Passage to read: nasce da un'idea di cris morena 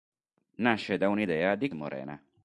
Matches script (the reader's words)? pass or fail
fail